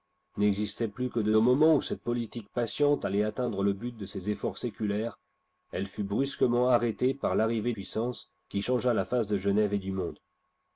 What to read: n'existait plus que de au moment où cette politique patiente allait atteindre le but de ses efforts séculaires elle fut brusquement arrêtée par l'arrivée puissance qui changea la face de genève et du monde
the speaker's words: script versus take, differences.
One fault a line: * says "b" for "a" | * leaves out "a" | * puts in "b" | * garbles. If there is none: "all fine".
all fine